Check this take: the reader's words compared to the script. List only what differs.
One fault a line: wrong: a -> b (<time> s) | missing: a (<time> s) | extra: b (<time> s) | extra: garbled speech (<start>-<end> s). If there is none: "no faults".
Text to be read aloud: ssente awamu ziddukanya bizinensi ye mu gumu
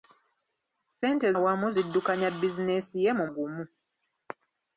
no faults